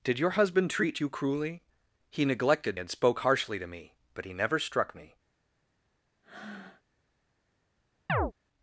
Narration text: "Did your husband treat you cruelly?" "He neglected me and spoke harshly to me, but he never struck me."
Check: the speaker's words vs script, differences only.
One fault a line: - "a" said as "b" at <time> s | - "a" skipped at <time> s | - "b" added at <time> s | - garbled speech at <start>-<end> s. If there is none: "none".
- "me" skipped at 2.8 s